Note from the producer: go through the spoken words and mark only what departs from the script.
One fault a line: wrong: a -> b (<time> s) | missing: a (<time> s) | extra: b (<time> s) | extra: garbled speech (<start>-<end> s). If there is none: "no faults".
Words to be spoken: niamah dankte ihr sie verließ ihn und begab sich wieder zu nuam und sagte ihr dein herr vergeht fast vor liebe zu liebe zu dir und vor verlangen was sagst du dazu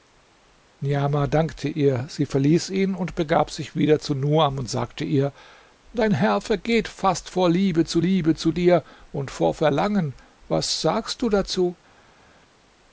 no faults